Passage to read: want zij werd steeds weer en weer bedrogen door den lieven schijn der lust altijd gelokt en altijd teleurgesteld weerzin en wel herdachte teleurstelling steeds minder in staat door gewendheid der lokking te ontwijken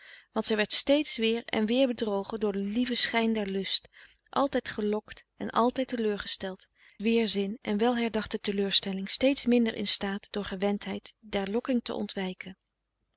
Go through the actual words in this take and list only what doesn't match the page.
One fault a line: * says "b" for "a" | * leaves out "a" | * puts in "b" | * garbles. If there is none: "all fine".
all fine